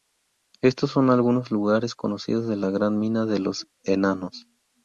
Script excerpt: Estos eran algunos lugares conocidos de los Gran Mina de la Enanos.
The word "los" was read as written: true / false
false